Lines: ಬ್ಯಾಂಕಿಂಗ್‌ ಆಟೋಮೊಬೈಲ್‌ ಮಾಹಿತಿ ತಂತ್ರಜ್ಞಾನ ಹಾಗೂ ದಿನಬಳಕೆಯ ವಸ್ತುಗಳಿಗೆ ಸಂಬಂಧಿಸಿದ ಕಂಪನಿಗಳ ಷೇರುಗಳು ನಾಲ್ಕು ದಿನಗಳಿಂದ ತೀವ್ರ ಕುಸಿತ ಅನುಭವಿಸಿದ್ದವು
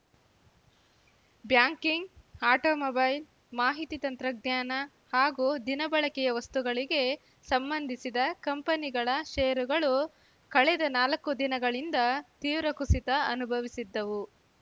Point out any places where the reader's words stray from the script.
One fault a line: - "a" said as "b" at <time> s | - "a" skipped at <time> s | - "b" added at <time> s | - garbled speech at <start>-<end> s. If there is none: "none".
- "ಕಳೆದ" added at 10.5 s